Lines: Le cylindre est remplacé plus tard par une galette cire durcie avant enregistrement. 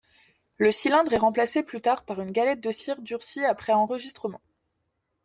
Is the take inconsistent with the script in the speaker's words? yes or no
yes